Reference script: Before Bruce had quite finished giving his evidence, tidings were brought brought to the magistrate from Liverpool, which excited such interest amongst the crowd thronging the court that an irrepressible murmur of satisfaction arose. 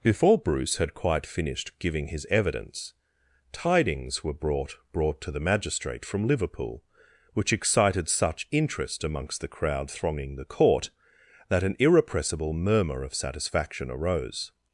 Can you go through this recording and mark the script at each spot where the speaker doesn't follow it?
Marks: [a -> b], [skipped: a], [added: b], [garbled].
Before Bruce had quite finished giving his evidence, tidings were brought brought to the magistrate from Liverpool, which excited such interest amongst the crowd thronging the court that an irrepressible murmur of satisfaction arose.